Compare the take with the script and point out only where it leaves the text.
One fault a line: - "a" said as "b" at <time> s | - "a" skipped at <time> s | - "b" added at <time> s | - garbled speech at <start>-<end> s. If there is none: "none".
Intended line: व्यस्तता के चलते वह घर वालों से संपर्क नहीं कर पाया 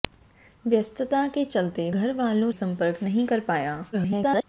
- "वह" skipped at 1.9 s
- "से" skipped at 2.5 s
- garbled speech at 3.9-4.4 s